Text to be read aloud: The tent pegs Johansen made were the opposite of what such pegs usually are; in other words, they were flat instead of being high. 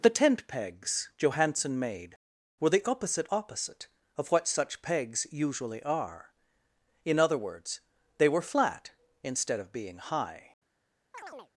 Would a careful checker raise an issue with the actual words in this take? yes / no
yes